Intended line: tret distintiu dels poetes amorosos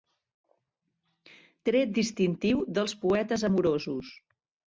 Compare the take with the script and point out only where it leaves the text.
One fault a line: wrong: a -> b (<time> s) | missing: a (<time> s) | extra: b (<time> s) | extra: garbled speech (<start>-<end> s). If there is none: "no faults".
no faults